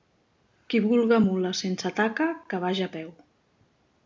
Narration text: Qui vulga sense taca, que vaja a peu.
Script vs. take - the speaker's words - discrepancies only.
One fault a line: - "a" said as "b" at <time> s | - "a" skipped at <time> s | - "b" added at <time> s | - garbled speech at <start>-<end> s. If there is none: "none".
- "mula" added at 1.2 s